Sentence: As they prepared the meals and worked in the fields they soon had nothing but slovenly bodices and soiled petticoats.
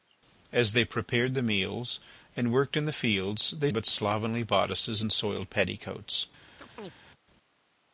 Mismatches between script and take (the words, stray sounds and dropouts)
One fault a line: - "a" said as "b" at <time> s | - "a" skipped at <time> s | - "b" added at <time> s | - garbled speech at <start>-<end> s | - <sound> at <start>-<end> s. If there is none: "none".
- "soon had nothing" skipped at 3.7 s
- chirp at 6.6-6.9 s